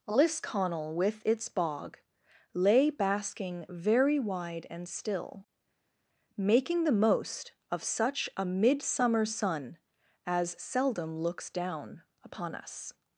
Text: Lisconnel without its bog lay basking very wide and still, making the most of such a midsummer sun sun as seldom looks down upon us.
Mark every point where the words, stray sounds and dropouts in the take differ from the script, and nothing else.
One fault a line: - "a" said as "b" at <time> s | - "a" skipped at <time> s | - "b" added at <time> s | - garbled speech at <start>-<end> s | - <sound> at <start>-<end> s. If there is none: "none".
- "without" said as "with" at 0.9 s
- "sun" skipped at 9.8 s